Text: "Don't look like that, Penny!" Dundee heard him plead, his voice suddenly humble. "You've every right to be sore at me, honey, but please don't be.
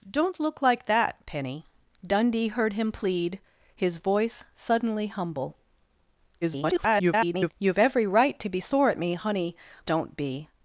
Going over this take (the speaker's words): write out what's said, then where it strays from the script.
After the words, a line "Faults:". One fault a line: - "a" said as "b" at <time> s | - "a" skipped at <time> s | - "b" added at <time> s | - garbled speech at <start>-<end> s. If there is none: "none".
"Don't look like that, Penny!" Dundee heard him plead, his voice suddenly humble. [garbled] "You've every right to be sore at me, honey, don't be.
Faults:
- garbled speech at 6.4-7.5 s
- "but please" skipped at 9.6 s